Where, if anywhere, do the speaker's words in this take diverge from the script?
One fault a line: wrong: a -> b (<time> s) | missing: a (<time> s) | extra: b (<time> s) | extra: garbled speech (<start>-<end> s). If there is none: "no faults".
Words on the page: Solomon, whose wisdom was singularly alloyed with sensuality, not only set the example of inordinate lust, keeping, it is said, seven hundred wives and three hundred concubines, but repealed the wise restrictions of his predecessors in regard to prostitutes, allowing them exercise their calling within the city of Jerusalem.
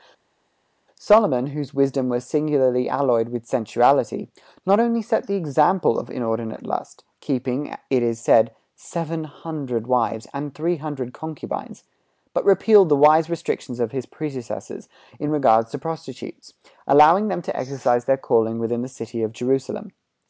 extra: to (17.4 s)